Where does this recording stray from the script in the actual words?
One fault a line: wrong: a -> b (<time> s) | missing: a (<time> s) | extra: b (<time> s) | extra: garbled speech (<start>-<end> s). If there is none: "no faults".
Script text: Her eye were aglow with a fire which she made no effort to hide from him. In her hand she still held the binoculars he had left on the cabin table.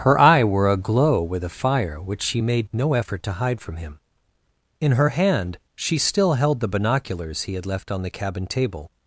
no faults